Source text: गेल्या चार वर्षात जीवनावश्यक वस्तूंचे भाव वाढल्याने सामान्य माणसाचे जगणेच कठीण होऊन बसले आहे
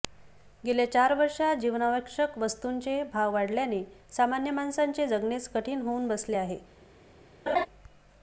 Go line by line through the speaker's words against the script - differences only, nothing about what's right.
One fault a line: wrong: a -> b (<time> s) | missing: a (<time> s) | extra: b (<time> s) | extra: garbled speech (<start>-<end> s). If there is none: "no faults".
no faults